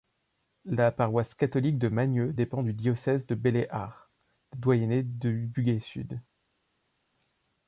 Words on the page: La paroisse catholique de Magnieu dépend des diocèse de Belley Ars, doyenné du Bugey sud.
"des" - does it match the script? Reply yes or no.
no